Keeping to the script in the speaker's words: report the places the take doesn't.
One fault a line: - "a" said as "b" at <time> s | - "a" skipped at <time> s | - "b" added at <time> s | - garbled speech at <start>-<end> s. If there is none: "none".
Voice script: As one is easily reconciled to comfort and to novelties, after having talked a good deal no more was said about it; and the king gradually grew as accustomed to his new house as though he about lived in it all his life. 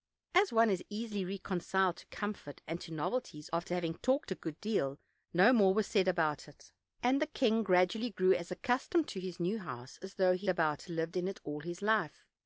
none